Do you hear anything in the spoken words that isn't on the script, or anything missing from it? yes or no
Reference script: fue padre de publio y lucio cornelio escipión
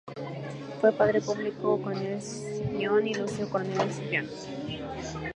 yes